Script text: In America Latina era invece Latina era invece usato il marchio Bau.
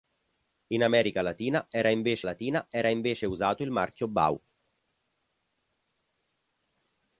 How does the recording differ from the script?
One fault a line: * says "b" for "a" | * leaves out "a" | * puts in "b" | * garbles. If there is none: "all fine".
all fine